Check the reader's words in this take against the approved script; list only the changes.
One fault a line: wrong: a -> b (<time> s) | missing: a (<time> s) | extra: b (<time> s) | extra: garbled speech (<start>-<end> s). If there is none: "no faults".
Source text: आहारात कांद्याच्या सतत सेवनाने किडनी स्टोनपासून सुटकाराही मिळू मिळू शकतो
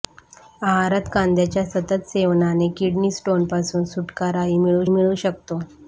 no faults